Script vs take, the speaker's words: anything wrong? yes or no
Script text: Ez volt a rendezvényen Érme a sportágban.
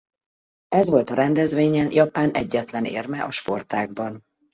yes